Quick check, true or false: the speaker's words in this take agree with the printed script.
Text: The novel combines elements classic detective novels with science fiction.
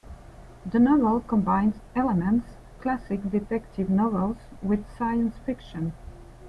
true